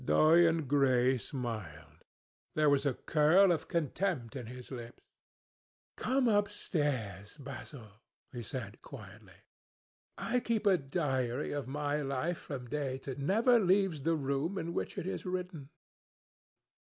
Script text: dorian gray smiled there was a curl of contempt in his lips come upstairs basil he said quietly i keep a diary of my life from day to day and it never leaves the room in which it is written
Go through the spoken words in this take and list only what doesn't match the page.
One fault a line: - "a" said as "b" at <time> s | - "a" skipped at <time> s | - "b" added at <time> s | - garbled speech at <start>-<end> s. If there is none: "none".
- "day and it" skipped at 13.1 s